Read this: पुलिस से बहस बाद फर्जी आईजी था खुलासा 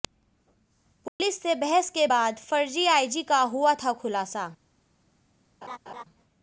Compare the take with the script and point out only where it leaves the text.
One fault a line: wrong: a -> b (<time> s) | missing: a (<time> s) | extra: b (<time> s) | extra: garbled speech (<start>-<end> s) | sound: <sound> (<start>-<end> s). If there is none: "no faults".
sound: dropout (1.1-1.2 s)
extra: के (1.9 s)
extra: का हुआ (3.2 s)
sound: laugh (5.6-6.0 s)